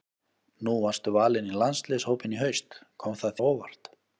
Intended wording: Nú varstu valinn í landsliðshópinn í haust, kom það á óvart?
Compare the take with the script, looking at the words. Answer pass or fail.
pass